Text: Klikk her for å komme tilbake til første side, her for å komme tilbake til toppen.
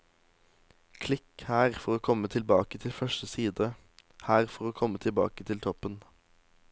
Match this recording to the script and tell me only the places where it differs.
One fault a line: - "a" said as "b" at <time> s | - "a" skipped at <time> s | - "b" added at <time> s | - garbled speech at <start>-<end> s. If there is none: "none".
none